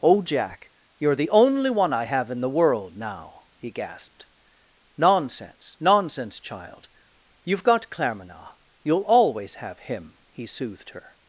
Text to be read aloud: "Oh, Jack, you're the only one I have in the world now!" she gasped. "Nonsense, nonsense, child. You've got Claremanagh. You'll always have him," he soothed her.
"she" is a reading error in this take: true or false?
true